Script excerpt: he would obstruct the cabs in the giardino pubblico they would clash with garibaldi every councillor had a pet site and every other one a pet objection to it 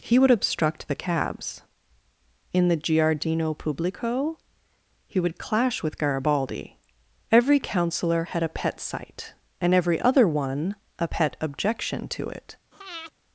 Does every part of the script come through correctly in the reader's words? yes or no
no